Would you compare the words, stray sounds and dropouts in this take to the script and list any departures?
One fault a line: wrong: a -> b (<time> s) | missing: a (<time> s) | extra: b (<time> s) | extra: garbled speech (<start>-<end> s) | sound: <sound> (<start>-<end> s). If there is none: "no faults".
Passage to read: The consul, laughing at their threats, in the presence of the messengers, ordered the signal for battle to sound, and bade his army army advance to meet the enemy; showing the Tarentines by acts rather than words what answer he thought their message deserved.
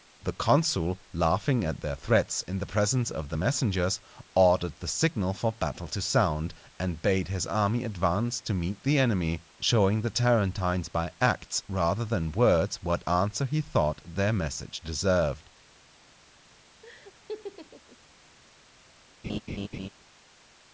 missing: army (7.8 s)
sound: laugh (16.8-18.0 s)
sound: laugh (19.2-19.9 s)